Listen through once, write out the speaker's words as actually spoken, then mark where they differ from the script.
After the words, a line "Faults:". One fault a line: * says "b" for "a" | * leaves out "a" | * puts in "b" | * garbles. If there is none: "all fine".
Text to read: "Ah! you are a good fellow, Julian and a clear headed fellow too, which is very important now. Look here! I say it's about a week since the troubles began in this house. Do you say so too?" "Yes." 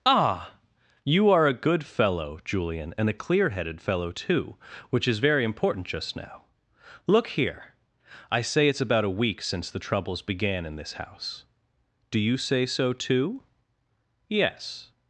"Ah! you are a good fellow, Julian and a clear headed fellow too, which is very important just now. Look here! I say it's about a week since the troubles began in this house. Do you say so too?" "Yes."
Faults:
* puts in "just"